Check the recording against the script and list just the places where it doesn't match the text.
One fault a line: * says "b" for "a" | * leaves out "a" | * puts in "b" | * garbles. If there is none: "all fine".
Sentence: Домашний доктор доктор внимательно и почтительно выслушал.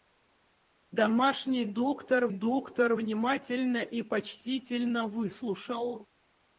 all fine